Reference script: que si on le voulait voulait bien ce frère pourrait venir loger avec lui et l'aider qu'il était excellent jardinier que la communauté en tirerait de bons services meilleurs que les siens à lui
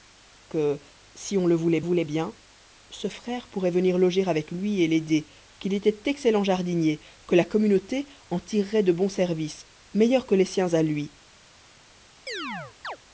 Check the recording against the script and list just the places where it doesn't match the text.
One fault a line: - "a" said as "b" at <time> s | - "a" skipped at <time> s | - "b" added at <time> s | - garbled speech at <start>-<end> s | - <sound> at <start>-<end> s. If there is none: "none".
- chirp at 12.3-13.0 s